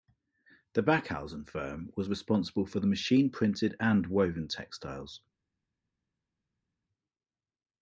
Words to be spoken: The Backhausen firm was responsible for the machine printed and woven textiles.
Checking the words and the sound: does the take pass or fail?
pass